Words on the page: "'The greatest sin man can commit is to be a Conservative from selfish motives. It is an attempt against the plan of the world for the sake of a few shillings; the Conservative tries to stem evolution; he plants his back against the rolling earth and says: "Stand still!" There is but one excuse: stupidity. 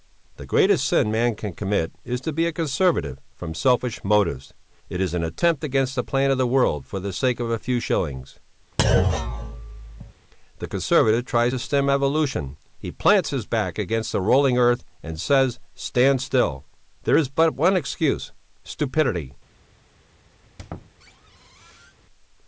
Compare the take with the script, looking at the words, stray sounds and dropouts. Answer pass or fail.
fail